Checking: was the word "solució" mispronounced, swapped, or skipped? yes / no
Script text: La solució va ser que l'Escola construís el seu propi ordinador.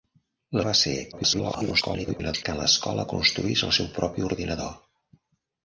yes